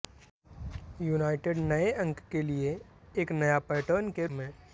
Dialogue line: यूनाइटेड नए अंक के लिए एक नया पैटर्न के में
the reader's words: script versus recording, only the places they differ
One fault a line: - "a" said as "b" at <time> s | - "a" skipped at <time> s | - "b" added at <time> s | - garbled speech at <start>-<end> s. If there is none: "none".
none